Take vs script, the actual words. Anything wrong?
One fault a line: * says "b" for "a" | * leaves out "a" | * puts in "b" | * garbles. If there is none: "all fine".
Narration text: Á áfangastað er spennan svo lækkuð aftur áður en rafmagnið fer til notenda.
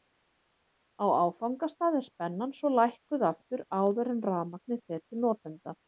all fine